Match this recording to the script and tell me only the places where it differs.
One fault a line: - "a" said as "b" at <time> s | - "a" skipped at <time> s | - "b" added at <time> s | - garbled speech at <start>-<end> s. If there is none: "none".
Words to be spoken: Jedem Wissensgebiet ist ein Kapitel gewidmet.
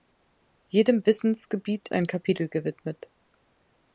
- "ist" skipped at 1.9 s